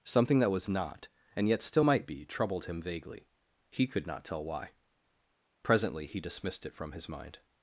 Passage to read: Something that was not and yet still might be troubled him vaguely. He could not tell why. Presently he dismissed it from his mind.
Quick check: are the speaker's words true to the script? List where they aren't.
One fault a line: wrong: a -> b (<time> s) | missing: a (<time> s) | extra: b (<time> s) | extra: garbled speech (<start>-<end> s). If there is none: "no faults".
no faults